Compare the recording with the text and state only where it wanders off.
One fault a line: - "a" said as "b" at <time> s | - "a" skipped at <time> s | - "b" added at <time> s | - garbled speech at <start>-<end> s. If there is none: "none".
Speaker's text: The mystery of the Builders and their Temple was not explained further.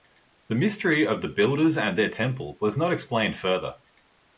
none